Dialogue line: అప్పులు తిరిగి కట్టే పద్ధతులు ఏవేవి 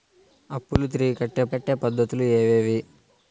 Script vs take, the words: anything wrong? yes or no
yes